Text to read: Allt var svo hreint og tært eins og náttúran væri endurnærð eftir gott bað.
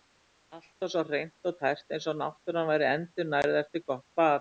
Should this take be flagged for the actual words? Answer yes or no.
no